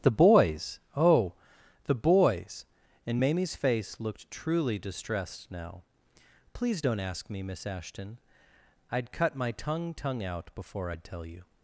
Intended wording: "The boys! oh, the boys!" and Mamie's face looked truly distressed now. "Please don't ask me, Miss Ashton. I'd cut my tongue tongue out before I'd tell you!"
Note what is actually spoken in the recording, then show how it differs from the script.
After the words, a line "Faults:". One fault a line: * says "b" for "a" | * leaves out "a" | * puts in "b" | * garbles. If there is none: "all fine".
"The boys! oh, the boys!" and Mamie's face looked truly distressed now. "Please don't ask me, Miss Ashton. I'd cut my tongue tongue out before I'd tell you!"
Faults:
all fine